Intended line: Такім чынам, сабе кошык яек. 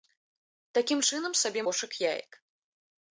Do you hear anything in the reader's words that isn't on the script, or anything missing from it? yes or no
no